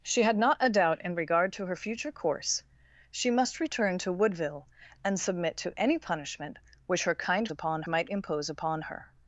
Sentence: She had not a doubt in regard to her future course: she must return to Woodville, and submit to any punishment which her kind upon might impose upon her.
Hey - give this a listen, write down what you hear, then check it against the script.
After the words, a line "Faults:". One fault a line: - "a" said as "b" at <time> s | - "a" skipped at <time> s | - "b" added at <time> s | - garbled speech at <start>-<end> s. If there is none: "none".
She had not a doubt in regard to her future course: she must return to Woodville, and submit to any punishment which her kind upon might impose upon her.
Faults:
none